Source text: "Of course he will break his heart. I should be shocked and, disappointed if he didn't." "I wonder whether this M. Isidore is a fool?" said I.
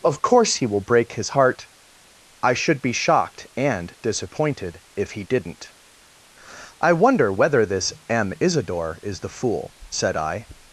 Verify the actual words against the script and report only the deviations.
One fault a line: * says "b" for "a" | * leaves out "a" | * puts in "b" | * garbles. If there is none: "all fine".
* says "the" for "a"